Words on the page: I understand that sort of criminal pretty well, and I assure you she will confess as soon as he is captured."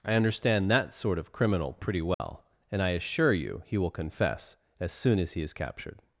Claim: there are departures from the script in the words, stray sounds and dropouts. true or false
true